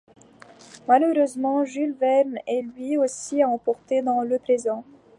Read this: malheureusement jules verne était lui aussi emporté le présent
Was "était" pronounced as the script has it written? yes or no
no